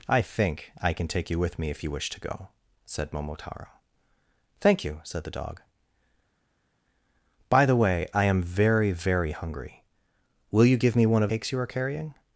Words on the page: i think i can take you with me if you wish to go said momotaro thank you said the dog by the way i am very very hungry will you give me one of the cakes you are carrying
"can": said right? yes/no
yes